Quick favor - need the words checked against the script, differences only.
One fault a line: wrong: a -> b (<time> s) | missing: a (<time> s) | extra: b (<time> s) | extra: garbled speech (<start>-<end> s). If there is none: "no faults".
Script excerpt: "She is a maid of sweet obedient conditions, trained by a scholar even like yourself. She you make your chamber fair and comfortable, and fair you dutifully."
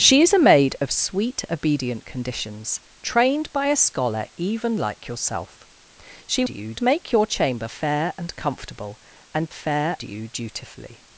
no faults